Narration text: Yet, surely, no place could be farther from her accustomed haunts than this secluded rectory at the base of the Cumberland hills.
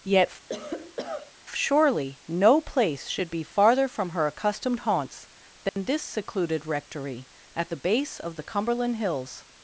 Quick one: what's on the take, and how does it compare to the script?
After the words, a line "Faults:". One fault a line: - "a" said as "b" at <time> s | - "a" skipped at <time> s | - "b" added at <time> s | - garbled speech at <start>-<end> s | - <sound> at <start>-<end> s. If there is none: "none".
Yet, surely, no place should be farther from her accustomed haunts than this secluded rectory at the base of the Cumberland hills.
Faults:
- cough at 0.5-1.3 s
- "could" said as "should" at 3.1 s
- dropout at 5.7-5.8 s